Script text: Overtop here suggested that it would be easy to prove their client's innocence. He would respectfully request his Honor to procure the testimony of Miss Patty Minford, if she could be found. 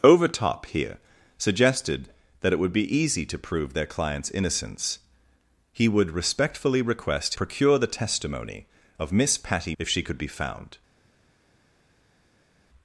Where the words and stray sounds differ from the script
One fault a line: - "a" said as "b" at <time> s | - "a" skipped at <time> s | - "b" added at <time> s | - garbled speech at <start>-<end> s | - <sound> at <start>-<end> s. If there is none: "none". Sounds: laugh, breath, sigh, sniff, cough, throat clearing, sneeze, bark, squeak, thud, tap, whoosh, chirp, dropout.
- "his Honor to" skipped at 7.3 s
- "Minford" skipped at 9.7 s